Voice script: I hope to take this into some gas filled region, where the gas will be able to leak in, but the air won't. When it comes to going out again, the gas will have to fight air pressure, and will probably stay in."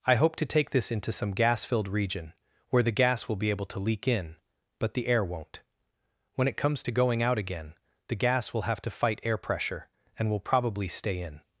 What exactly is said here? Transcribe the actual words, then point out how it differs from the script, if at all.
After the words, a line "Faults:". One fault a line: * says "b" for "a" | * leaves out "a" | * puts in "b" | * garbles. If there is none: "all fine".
I hope to take this into some gas filled region, where the gas will be able to leak in, but the air won't. When it comes to going out again, the gas will have to fight air pressure, and will probably stay in."
Faults:
all fine